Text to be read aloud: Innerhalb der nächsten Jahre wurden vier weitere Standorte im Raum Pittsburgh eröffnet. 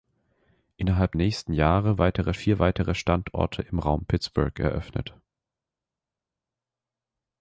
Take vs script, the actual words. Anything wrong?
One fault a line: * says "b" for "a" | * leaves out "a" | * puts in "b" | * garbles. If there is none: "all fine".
* leaves out "der"
* says "weitere" for "wurden"